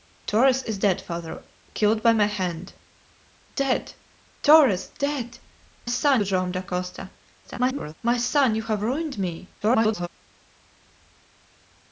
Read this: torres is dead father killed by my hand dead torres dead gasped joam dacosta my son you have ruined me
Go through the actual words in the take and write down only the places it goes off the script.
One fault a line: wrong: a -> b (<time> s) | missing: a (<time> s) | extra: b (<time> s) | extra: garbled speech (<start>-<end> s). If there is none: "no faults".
wrong: gasped -> son (5.9 s)
extra: garbled speech (7.4-7.9 s)
extra: garbled speech (9.6-10.1 s)